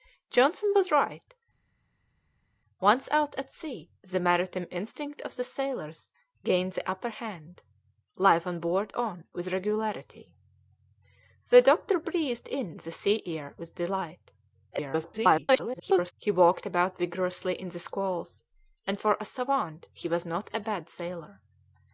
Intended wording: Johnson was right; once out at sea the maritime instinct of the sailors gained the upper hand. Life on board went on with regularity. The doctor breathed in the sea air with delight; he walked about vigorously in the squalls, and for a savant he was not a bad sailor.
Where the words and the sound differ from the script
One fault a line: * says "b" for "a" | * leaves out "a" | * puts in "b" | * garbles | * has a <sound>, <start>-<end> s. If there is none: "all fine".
* leaves out "went"
* garbles